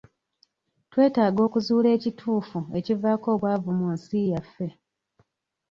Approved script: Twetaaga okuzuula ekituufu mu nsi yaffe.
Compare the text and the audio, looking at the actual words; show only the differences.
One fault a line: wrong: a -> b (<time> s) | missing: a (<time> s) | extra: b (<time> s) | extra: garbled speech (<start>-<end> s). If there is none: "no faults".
extra: ekivaako obwavu (2.8 s)